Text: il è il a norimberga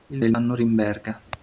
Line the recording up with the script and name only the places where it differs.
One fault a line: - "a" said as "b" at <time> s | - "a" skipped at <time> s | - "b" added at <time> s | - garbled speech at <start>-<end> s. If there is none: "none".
none